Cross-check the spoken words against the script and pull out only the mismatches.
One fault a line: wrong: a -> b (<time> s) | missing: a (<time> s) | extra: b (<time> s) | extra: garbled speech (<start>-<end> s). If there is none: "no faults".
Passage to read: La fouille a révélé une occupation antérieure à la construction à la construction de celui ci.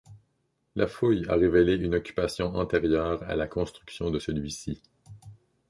missing: à la construction (4.1 s)